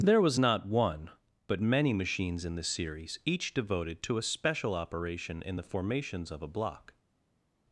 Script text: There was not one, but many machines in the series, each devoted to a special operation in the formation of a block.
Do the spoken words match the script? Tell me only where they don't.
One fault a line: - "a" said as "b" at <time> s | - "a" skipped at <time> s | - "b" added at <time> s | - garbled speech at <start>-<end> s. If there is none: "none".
- "formation" said as "formations" at 5.6 s